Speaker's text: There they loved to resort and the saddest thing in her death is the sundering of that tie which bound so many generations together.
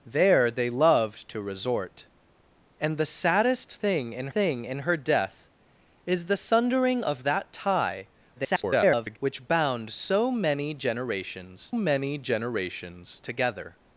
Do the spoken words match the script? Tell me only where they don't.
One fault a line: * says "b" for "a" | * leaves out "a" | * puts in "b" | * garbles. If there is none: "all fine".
* puts in "thing in"
* garbles
* puts in "many generations"